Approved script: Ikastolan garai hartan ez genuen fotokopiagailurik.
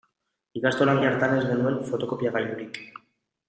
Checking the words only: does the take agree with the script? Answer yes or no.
no